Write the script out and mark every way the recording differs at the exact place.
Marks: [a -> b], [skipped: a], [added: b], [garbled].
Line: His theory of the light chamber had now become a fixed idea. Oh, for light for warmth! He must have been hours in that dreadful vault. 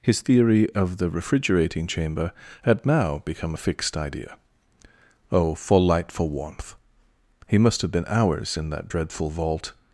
His theory of the [light -> refrigerating] chamber had now become a fixed idea. Oh, for light for warmth! He must have been hours in that dreadful vault.